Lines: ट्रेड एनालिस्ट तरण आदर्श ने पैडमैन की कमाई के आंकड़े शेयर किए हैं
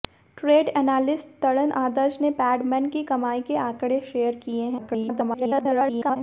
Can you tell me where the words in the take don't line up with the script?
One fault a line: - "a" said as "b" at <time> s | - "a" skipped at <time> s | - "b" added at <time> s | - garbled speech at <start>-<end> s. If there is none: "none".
- garbled speech at 4.8-6.2 s